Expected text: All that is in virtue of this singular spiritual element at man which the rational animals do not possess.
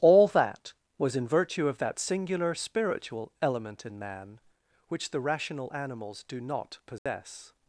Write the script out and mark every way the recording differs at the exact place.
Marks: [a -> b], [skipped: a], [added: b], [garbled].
All that [is -> was] in virtue of [this -> that] singular spiritual element [at -> in] man which the rational animals do not possess.